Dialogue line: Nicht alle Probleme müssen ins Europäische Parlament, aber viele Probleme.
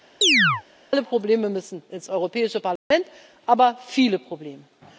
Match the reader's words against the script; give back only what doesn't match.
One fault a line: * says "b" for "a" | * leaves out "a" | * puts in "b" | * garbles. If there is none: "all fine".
all fine